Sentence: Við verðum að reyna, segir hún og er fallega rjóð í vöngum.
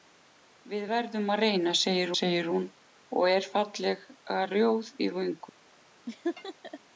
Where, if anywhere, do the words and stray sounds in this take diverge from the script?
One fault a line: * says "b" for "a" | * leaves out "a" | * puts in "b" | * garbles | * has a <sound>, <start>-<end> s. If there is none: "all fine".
* puts in "segir"
* has a laugh, 6.1-6.8 s